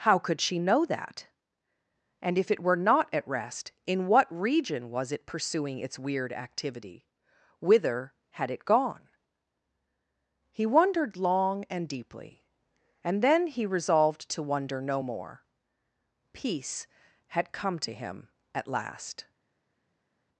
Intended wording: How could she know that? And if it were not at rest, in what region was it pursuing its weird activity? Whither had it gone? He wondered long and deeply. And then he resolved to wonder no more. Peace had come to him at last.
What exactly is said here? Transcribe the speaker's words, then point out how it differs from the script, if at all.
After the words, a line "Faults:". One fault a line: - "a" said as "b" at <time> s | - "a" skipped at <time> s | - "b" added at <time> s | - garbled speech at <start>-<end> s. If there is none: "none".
How could she know that? And if it were not at rest, in what region was it pursuing its weird activity? Whither had it gone? He wondered long and deeply. And then he resolved to wonder no more. Peace had come to him at last.
Faults:
none